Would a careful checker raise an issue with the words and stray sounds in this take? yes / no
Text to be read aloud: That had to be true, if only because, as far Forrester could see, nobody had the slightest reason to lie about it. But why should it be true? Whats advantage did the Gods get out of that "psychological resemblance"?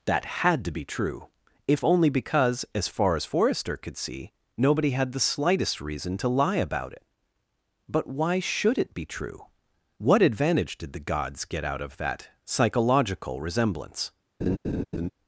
yes